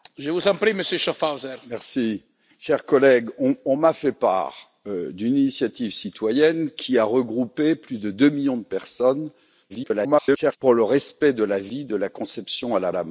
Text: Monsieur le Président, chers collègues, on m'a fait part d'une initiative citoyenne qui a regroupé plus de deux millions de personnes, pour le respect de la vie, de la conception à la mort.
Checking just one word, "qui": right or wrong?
right